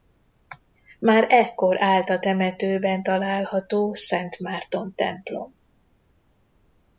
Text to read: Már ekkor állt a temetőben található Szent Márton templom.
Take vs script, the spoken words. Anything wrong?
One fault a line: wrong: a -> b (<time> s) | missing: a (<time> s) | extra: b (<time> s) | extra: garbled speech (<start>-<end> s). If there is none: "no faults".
no faults